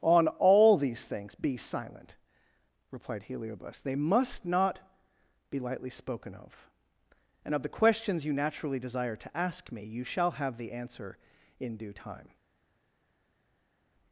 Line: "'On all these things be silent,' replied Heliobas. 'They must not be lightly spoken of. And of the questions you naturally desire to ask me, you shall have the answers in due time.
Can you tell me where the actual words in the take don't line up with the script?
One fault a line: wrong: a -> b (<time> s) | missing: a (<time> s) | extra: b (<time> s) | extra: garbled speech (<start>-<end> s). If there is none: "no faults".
wrong: answers -> answer (10.7 s)